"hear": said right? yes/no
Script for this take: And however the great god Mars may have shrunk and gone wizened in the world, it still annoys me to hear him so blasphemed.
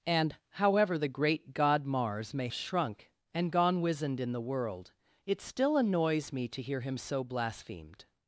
yes